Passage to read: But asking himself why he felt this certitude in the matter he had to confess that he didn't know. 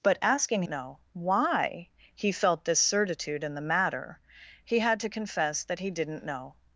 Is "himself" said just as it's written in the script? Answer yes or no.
no